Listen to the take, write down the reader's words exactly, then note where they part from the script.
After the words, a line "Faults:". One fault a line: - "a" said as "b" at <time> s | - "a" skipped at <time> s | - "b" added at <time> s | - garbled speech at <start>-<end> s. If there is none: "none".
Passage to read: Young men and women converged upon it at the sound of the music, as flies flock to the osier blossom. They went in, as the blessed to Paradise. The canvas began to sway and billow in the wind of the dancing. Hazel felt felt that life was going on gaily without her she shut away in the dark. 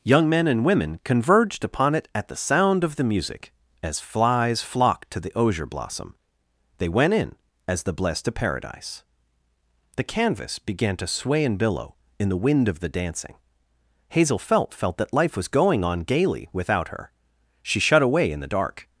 Young men and women converged upon it at the sound of the music, as flies flock to the osier blossom. They went in, as the blessed to Paradise. The canvas began to sway and billow in the wind of the dancing. Hazel felt felt that life was going on gaily without her she shut away in the dark.
Faults:
none